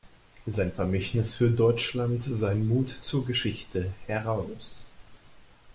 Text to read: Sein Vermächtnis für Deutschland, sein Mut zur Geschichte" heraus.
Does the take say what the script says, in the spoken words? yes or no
yes